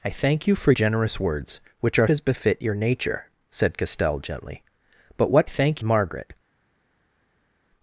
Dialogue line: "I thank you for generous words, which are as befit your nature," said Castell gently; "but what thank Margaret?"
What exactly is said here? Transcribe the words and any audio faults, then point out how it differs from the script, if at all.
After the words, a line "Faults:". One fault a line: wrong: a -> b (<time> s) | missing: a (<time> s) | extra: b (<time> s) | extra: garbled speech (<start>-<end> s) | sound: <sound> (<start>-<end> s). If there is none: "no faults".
"I thank you for generous words, which are as befit your nature," said Castell gently; "but what thank Margaret?"
Faults:
no faults